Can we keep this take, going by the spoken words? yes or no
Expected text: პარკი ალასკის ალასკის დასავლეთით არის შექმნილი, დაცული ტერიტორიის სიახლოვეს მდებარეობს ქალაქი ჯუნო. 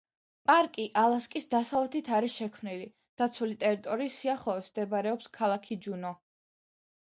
no